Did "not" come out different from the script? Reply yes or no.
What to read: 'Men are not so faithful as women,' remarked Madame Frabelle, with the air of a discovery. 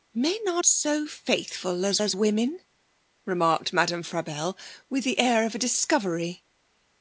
yes